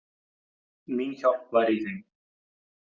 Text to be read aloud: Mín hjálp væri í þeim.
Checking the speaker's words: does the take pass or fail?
pass